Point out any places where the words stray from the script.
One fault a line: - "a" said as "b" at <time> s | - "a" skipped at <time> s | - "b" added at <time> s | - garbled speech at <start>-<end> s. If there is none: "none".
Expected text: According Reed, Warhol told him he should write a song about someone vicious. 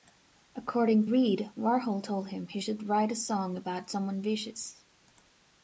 none